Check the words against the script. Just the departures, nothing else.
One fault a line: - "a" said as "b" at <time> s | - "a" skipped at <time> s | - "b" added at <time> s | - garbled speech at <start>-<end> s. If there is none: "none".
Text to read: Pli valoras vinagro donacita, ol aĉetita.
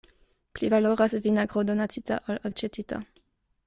none